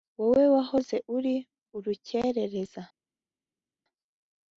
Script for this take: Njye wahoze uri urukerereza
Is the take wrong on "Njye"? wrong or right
wrong